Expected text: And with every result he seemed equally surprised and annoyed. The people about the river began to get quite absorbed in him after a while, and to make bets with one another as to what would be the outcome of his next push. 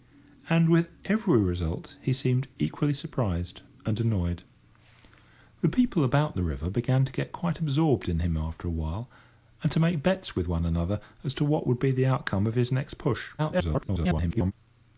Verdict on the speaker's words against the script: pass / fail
fail